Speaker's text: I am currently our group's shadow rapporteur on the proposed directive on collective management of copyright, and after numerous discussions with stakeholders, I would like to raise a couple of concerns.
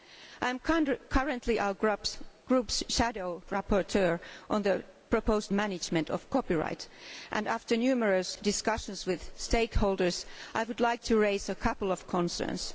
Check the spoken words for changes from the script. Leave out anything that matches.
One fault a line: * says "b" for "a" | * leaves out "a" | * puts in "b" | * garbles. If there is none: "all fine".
* leaves out "directive on collective"